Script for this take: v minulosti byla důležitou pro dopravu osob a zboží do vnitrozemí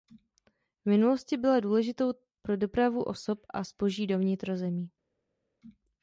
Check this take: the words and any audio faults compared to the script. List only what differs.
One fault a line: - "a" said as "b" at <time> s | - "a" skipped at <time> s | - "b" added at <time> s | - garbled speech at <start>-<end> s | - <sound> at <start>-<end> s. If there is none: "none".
none